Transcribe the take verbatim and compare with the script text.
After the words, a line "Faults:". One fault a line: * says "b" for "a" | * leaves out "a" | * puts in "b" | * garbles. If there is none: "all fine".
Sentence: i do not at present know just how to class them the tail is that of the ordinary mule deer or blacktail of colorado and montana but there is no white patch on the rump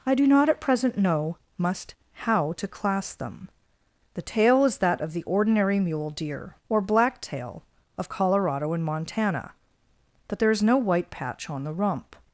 i do not at present know must how to class them the tail is that of the ordinary mule deer or blacktail of colorado and montana but there is no white patch on the rump
Faults:
* says "must" for "just"